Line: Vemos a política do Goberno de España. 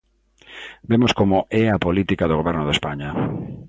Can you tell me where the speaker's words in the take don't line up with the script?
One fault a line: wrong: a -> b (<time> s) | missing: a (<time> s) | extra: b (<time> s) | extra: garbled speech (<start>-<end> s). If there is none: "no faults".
extra: como é (1.1 s)